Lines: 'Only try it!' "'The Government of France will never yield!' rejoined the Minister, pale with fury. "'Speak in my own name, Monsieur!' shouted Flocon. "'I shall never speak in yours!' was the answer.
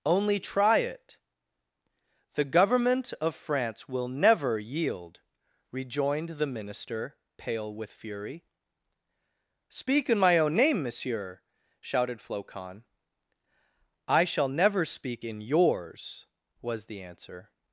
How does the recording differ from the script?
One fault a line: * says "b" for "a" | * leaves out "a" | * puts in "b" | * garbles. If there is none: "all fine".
all fine